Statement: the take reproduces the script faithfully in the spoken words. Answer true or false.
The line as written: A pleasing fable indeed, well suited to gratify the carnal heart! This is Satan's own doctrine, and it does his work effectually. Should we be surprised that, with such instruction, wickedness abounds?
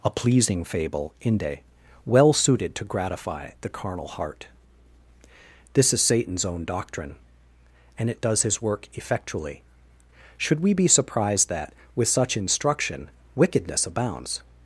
false